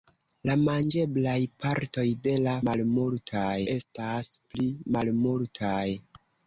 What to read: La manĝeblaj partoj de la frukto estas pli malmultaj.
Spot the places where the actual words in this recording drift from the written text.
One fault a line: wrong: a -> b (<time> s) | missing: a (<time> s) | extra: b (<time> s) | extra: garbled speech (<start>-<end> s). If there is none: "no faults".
wrong: frukto -> malmultaj (2.7 s)